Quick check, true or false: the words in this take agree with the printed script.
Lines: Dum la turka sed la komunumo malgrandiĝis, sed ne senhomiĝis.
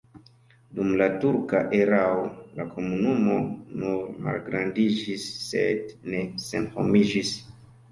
false